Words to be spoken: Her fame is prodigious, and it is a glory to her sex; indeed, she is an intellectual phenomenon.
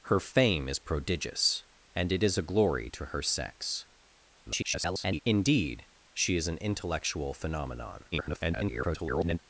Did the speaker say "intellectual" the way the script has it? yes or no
yes